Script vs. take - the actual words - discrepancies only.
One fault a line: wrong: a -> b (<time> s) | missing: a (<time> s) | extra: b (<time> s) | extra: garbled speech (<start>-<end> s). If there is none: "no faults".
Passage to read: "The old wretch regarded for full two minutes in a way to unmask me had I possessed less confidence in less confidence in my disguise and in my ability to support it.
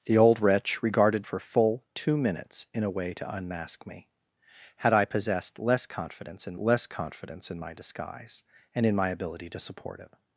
no faults